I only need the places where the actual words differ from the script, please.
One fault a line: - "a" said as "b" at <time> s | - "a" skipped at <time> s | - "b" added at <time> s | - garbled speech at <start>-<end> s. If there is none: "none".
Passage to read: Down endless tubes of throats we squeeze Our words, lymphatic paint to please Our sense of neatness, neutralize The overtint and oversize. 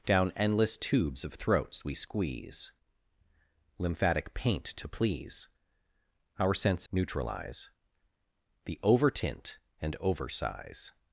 - "Our words" skipped at 2.7 s
- "of neatness" skipped at 6.9 s